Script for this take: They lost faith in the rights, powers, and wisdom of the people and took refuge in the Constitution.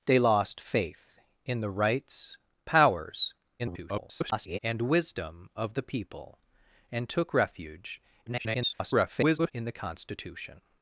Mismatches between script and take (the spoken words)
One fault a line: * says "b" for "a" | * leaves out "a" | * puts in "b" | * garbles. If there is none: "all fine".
* garbles
* garbles